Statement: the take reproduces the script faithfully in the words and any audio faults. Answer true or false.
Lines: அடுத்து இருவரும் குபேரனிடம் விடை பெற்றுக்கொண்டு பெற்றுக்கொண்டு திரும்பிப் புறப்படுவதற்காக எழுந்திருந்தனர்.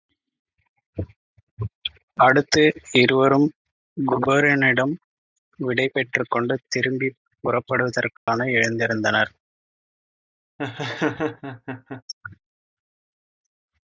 false